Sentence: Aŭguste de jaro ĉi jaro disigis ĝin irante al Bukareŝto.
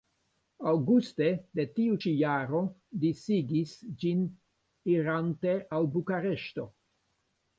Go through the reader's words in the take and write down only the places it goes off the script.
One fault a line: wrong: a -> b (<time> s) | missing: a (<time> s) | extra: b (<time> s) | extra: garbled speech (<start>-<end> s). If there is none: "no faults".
wrong: jaro -> tiu (1.8 s)